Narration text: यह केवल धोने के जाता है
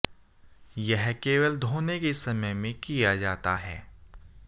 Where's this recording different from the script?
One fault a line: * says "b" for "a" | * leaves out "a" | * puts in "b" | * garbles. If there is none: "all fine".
* puts in "समय में किया"